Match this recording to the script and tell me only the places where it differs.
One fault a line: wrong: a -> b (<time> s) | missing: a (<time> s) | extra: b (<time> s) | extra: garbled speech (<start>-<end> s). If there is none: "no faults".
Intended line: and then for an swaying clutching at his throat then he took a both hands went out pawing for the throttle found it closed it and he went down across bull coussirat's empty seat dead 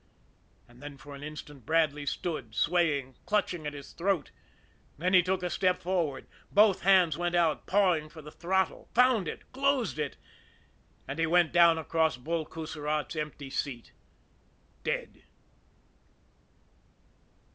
extra: instant bradley stood (1.2 s)
extra: step forward (5.5 s)